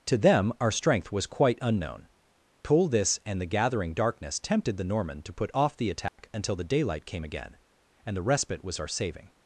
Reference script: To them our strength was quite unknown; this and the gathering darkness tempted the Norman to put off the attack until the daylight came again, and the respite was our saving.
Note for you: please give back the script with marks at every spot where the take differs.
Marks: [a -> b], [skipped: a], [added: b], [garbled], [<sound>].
To them our strength was quite unknown; [added: pull] this and the gathering darkness tempted the Norman to put off the attack [dropout] until the daylight came again, and the respite was our saving.